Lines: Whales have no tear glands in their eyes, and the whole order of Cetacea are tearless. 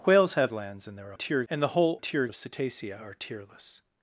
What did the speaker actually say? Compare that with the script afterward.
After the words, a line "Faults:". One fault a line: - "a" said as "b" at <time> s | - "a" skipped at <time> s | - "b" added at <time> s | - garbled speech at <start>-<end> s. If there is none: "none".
Whales have glands in their tear, and the whole tear of Cetacea are tearless.
Faults:
- "no tear" skipped at 0.5 s
- "eyes" said as "tear" at 1.1 s
- "order" said as "tear" at 2.0 s